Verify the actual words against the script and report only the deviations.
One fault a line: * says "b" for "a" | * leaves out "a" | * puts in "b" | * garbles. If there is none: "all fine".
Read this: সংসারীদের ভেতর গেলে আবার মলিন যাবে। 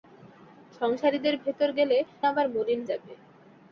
all fine